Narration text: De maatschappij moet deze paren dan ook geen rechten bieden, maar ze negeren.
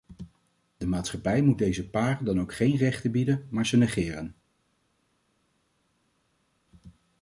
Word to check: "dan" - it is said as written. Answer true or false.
true